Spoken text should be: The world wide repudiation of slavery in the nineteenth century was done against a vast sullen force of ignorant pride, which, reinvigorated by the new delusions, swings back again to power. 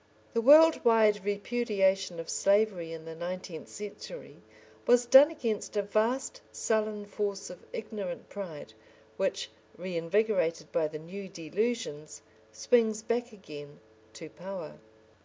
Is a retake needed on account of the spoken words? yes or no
no